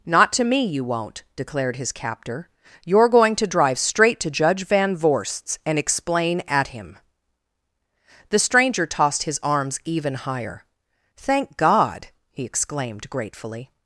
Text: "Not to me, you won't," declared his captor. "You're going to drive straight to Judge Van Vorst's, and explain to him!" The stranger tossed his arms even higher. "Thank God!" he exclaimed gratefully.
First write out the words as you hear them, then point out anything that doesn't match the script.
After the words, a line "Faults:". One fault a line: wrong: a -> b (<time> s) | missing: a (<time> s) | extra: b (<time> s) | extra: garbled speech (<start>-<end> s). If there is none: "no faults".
"Not to me, you won't," declared his captor. "You're going to drive straight to Judge Van Vorst's, and explain at him!" The stranger tossed his arms even higher. "Thank God!" he exclaimed gratefully.
Faults:
wrong: to -> at (6.5 s)